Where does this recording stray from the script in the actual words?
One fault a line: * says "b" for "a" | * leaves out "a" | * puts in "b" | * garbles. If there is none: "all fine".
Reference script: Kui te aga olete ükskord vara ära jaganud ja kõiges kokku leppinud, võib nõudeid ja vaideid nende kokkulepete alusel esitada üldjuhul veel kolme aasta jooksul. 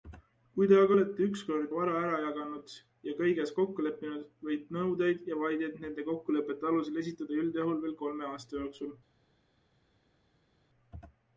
all fine